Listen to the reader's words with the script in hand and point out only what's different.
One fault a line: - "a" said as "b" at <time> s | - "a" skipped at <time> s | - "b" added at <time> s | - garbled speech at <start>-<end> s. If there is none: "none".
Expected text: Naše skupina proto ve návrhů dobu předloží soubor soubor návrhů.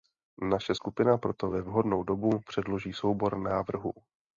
- "návrhů" said as "vhodnou" at 1.6 s
- "soubor" skipped at 3.4 s